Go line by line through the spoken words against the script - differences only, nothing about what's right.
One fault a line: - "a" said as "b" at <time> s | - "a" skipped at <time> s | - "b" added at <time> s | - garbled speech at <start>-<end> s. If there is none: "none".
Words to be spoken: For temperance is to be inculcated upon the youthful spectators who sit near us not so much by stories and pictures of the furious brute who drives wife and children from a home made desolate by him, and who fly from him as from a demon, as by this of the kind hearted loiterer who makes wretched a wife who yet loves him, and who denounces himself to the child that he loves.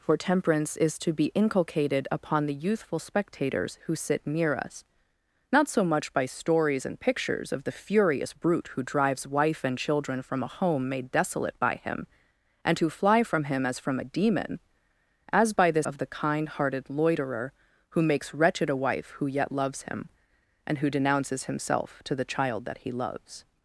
none